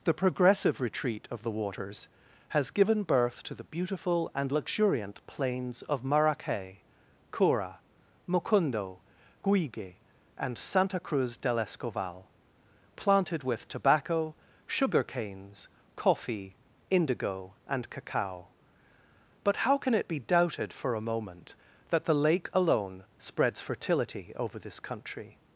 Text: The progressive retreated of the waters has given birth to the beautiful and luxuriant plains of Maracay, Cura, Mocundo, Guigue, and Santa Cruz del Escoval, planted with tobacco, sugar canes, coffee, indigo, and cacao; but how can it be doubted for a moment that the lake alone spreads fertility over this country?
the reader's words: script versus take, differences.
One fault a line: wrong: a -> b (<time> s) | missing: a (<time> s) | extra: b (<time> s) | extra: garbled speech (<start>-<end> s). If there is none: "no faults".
wrong: retreated -> retreat (0.8 s)